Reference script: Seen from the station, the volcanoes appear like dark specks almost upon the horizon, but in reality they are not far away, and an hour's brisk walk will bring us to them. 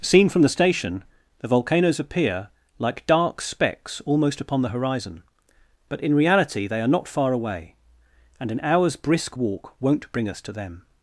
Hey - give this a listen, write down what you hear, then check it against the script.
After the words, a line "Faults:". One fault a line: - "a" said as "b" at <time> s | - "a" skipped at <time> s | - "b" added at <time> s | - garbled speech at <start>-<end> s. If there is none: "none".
Seen from the station, the volcanoes appear like dark specks almost upon the horizon, but in reality they are not far away, and an hour's brisk walk won't bring us to them.
Faults:
- "will" said as "won't" at 9.8 s